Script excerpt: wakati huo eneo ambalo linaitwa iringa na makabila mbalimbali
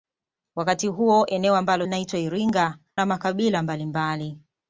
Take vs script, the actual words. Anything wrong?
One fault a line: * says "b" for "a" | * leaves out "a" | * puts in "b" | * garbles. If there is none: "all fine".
all fine